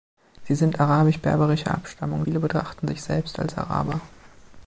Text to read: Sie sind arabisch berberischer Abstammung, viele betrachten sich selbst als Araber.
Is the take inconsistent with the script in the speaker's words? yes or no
no